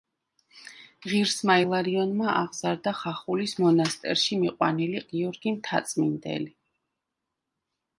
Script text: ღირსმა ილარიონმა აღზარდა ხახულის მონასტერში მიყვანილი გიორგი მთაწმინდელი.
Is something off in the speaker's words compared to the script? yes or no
no